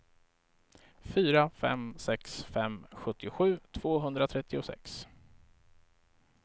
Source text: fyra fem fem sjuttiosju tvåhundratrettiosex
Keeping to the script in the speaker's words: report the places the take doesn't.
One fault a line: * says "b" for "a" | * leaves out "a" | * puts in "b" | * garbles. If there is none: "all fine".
* puts in "sex"